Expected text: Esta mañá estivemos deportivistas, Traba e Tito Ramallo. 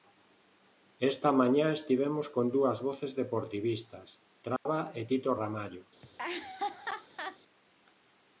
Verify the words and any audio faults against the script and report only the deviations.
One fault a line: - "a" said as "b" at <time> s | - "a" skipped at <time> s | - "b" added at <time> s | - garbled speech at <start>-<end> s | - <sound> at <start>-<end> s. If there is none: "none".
- "con dúas voces" added at 2.4 s
- dropout at 4.6-4.7 s
- laugh at 6.0-7.4 s